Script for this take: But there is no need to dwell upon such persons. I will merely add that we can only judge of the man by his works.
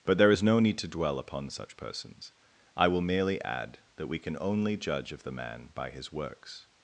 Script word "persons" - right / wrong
right